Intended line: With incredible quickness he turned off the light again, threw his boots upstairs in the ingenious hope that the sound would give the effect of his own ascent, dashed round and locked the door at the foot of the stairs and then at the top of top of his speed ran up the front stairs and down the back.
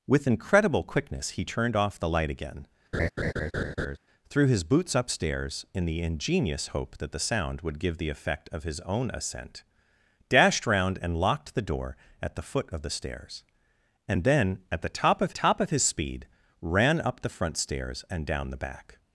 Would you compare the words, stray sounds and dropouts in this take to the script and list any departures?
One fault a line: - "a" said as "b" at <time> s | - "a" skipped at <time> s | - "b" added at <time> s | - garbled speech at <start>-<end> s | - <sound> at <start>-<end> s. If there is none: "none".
- laugh at 2.9-4.0 s